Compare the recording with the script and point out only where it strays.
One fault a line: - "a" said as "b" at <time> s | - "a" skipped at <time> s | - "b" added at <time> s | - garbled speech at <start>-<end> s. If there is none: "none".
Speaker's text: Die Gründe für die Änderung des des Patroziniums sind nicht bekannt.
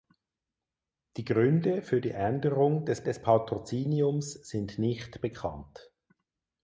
none